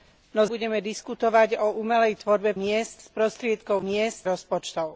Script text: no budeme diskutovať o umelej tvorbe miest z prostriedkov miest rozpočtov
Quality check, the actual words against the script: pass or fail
pass